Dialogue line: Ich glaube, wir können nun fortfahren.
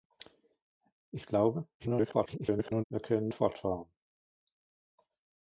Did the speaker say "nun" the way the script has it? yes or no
no